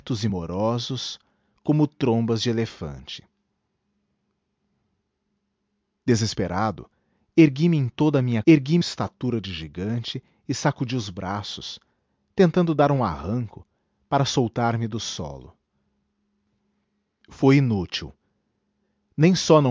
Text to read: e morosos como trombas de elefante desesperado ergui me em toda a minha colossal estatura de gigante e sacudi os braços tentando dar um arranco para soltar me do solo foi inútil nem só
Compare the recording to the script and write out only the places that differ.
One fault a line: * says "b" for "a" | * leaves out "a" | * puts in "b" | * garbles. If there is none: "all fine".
* says "ergui" for "colossal"